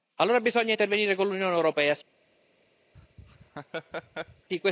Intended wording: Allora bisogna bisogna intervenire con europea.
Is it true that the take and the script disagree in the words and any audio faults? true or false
true